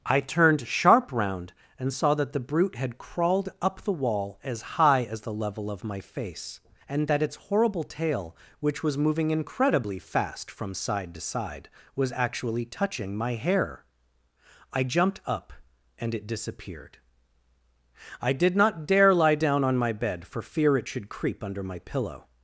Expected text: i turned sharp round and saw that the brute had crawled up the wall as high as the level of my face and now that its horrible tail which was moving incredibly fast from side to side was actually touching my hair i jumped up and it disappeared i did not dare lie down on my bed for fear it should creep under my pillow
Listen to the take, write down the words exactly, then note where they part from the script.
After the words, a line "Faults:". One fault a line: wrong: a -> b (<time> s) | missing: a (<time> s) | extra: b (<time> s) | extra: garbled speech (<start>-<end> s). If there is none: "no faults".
i turned sharp round and saw that the brute had crawled up the wall as high as the level of my face and that its horrible tail which was moving incredibly fast from side to side was actually touching my hair i jumped up and it disappeared i did not dare lie down on my bed for fear it should creep under my pillow
Faults:
missing: now (7.1 s)